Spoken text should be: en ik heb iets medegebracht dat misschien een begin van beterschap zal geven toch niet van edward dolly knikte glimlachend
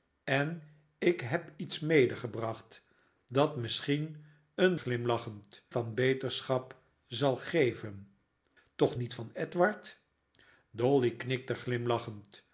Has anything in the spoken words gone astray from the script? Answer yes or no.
yes